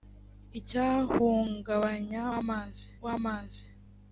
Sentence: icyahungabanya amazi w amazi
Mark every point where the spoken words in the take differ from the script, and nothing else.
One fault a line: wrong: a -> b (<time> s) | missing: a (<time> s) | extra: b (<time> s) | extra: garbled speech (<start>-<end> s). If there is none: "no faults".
no faults